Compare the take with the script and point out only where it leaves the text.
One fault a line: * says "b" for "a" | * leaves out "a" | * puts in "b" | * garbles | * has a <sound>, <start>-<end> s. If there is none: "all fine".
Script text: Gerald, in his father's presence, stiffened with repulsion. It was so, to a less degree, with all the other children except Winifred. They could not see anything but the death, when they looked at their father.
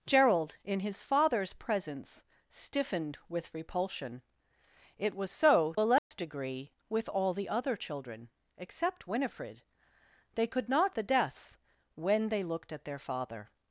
* leaves out "to"
* has a dropout, 6.0-6.1 s
* leaves out "see anything but"